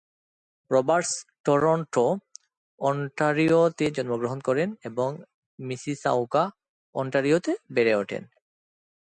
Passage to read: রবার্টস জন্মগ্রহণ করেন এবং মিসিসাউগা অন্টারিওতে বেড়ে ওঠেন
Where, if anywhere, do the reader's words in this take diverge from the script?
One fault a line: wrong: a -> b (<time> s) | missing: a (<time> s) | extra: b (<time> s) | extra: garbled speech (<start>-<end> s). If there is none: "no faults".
extra: টরন্টো অন্টারিওতে (1.4 s)